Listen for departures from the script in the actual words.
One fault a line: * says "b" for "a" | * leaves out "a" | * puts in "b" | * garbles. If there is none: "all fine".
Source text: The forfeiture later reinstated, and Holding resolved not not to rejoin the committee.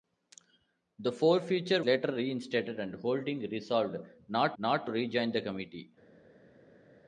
all fine